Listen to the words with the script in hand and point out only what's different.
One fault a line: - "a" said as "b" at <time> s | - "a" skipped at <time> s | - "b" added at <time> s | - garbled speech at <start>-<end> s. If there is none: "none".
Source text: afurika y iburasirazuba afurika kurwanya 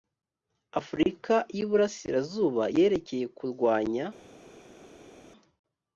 - "afurika" said as "yerekeye" at 2.7 s